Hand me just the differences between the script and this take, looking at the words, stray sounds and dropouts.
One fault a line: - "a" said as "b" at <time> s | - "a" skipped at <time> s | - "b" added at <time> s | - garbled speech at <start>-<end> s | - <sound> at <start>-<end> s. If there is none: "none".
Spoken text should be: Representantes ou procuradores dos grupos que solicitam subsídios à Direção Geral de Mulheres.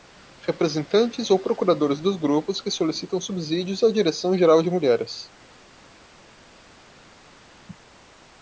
none